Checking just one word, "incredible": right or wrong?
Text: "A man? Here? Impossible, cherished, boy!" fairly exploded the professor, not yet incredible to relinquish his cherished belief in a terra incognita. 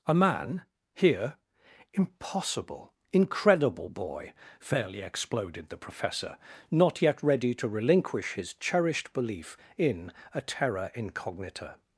wrong